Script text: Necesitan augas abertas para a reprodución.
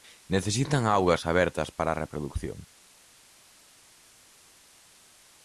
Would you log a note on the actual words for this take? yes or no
no